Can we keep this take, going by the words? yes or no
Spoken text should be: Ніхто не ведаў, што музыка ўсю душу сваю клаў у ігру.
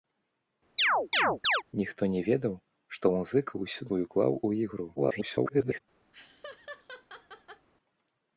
no